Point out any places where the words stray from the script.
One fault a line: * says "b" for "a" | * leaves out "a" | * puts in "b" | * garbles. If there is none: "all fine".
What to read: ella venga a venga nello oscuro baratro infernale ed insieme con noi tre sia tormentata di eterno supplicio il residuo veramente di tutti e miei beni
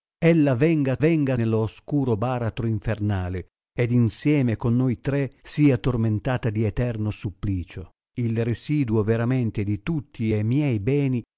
all fine